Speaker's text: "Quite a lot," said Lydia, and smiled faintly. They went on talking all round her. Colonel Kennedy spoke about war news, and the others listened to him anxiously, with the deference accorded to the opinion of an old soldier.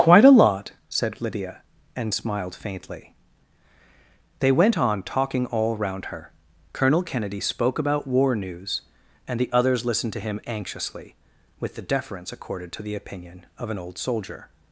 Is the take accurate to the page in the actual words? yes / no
yes